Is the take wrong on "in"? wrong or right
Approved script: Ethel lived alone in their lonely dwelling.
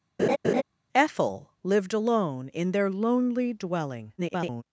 right